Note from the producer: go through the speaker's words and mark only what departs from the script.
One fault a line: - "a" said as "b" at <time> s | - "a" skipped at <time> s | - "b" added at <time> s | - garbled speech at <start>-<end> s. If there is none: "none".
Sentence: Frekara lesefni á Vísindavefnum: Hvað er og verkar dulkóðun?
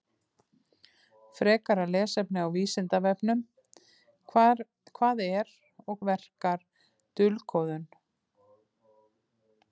none